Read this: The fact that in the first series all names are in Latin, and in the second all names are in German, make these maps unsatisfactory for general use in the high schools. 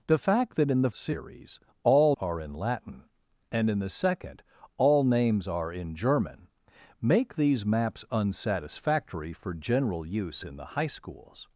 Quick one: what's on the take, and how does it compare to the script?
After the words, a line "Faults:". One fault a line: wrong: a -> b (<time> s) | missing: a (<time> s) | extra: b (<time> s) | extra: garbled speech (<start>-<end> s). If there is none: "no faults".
The fact that in the series all are in Latin, and in the second all names are in German, make these maps unsatisfactory for general use in the high schools.
Faults:
missing: first (0.9 s)
missing: names (2.2 s)